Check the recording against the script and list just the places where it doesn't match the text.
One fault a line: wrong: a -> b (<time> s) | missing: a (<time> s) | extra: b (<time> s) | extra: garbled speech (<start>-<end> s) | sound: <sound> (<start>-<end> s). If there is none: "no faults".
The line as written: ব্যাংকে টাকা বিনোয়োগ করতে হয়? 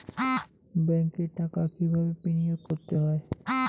extra: কিভাবে (1.7 s)
sound: dropout (2.7-2.7 s)